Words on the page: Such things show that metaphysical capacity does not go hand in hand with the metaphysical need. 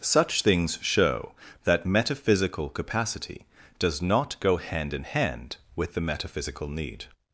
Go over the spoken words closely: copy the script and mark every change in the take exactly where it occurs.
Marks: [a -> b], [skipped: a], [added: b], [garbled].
Such things show that metaphysical capacity does not go hand in hand with the metaphysical need.